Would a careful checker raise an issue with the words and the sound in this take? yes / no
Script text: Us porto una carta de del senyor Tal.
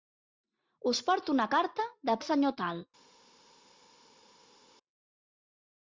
no